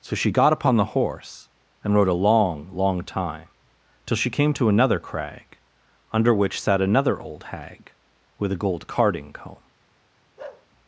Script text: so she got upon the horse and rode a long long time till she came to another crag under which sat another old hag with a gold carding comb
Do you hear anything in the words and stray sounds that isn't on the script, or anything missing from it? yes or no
yes